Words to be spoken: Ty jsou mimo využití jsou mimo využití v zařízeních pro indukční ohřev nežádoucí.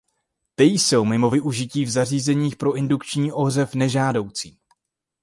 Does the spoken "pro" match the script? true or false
true